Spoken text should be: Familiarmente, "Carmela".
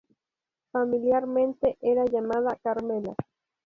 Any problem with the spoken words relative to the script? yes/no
yes